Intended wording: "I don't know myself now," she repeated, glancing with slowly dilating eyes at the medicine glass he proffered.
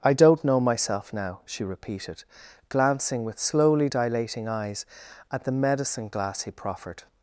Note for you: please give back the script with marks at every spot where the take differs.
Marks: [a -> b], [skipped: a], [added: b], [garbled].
"I don't know myself now," she repeated, glancing with slowly dilating eyes at the medicine glass he proffered.